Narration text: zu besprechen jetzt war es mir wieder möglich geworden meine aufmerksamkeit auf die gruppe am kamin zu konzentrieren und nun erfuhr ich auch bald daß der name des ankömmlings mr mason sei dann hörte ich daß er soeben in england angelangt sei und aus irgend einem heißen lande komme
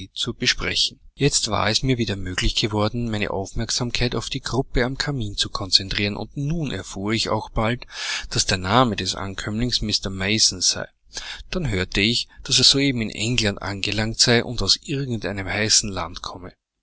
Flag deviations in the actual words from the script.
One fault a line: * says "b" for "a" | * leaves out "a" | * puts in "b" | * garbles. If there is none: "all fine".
all fine